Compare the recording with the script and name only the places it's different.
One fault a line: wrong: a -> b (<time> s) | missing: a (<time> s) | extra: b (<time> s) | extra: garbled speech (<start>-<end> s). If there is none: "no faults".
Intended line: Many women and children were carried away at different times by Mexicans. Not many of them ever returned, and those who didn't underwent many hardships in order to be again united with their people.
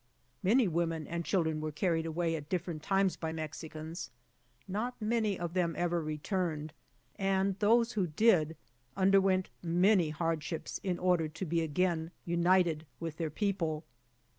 wrong: didn't -> did (8.1 s)